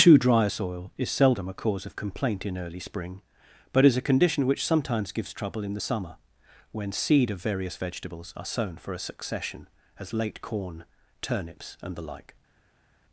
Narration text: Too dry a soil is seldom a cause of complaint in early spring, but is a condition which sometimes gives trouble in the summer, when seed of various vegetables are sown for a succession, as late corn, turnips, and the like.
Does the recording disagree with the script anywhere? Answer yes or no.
no